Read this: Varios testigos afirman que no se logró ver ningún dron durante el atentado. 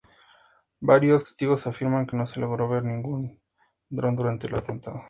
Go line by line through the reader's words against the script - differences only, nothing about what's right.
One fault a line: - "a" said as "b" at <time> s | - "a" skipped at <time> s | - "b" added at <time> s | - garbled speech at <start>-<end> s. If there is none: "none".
none